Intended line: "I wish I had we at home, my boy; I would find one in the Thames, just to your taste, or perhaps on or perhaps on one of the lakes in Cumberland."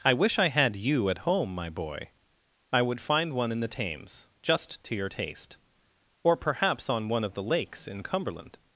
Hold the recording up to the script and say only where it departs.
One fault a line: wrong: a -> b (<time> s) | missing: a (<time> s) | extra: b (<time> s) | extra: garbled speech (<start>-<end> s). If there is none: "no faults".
wrong: we -> you (0.8 s)
missing: or perhaps on (7.1 s)